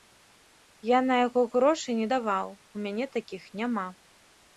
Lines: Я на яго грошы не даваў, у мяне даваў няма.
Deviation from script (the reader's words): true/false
true